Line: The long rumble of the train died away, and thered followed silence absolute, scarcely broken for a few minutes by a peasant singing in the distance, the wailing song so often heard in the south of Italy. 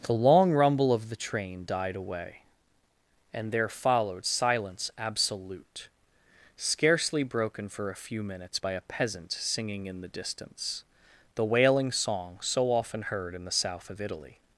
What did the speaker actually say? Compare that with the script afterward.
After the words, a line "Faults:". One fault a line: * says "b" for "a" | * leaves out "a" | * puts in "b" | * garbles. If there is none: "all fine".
The long rumble of the train died away, and there followed silence absolute, scarcely broken for a few minutes by a peasant singing in the distance, the wailing song so often heard in the south of Italy.
Faults:
* says "there" for "thered"